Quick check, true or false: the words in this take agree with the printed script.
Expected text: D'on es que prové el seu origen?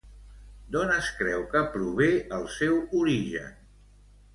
false